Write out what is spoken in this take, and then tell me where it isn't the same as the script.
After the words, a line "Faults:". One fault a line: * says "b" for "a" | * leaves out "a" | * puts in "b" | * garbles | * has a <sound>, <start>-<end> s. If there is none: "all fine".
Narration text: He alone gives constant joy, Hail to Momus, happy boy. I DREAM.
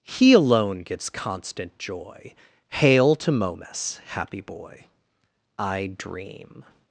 He alone gives constant joy, Hail to Momus, happy boy. I DREAM.
Faults:
all fine